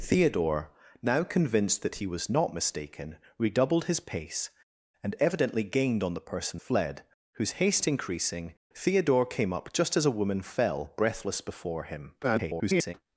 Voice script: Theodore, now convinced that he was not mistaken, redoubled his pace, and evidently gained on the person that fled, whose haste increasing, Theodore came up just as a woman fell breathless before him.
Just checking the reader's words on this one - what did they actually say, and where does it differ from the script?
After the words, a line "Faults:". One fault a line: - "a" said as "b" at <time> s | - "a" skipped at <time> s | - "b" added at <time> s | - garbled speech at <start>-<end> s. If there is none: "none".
Theodore, now convinced that he was not mistaken, redoubled his pace, and evidently gained on the person fled, whose haste increasing, Theodore came up just as a woman fell breathless before him. [garbled]
Faults:
- "that" skipped at 6.6 s
- garbled speech at 12.2-12.9 s